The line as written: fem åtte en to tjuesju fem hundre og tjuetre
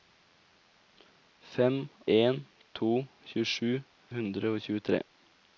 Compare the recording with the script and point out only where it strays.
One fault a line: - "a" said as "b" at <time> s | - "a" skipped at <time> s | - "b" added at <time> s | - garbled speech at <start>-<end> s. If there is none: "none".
- "åtte" skipped at 1.8 s
- "fem" skipped at 3.7 s